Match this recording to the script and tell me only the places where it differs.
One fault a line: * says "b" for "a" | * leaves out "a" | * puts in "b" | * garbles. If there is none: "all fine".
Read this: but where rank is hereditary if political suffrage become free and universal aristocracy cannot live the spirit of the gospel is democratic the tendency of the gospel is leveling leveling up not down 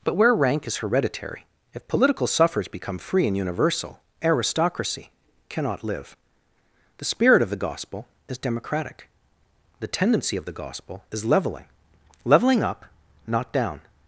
all fine